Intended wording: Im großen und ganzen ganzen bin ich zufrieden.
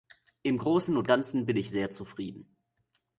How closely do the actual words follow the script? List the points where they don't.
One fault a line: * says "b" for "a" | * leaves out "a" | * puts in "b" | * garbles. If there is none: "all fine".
* leaves out "ganzen"
* puts in "sehr"